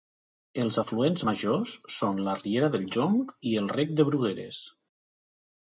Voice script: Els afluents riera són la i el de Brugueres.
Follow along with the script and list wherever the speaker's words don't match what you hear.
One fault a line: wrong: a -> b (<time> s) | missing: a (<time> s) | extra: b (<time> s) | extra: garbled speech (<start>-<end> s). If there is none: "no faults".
wrong: riera -> majors (1.3 s)
extra: riera del Jonc (2.4 s)
extra: rec (3.8 s)